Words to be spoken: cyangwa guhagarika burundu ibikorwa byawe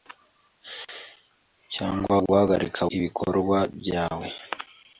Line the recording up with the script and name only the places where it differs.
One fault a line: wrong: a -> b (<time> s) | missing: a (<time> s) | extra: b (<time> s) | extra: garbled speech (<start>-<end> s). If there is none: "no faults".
missing: burundu (2.8 s)